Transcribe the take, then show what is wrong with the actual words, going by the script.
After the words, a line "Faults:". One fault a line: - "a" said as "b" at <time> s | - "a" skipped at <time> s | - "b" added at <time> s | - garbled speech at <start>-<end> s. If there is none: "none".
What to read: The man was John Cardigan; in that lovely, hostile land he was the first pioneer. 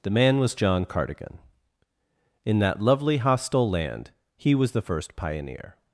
The man was John Cardigan; in that lovely, hostile land he was the first pioneer.
Faults:
none